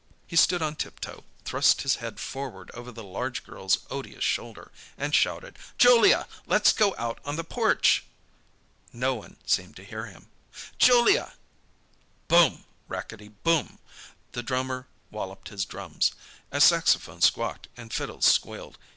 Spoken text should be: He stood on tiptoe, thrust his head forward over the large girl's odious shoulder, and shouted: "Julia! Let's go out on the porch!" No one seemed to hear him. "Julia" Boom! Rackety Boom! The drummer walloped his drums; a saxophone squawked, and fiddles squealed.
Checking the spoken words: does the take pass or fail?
pass